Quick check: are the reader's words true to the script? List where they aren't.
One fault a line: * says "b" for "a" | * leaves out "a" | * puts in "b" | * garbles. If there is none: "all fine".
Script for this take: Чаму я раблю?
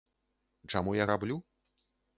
all fine